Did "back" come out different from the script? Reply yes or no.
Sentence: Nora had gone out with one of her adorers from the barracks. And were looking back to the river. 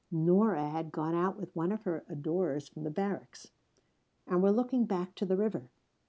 no